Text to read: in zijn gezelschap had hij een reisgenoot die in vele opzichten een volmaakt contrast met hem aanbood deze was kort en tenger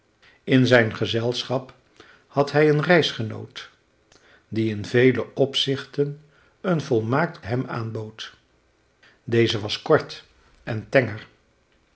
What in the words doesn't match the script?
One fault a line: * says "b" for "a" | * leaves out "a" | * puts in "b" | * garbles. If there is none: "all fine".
* leaves out "contrast met"